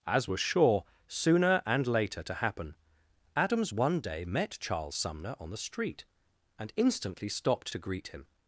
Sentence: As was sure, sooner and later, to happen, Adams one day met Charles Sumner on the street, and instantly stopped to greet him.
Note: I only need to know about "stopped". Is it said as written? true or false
true